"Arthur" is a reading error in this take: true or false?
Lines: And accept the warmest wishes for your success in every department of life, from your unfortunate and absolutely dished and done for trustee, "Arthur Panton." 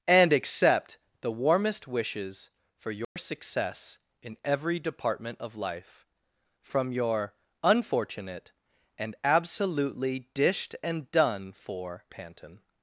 true